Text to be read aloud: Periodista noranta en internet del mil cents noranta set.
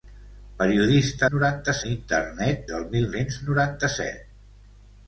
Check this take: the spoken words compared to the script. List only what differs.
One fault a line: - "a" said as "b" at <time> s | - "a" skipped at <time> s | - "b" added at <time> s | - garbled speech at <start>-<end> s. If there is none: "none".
none